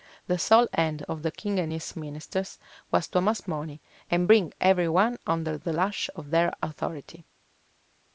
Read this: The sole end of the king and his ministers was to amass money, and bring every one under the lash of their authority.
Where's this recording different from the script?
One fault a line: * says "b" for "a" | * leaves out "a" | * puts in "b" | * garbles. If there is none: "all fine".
all fine